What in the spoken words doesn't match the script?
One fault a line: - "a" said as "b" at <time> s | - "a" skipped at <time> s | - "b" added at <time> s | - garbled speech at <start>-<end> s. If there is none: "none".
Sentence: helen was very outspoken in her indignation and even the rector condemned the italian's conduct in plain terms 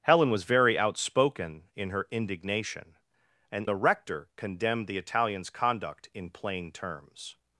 - "even" skipped at 3.7 s